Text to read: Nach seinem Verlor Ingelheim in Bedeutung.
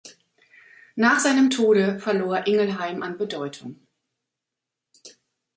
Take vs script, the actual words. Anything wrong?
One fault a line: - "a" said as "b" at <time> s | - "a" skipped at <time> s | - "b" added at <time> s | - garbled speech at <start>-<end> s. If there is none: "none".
- "Tode" added at 1.5 s
- "in" said as "an" at 3.0 s